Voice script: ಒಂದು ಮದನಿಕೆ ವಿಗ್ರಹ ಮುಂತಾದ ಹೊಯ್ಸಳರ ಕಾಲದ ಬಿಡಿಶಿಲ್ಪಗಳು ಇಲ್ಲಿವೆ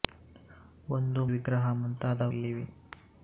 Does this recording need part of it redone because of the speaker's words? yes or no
yes